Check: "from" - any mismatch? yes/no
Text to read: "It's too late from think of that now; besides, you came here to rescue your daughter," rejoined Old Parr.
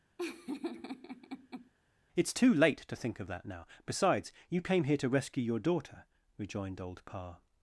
yes